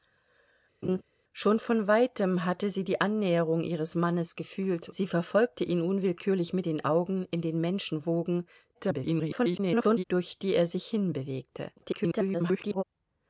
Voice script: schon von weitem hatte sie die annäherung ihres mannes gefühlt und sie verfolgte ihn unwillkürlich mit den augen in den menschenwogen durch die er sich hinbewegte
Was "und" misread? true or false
true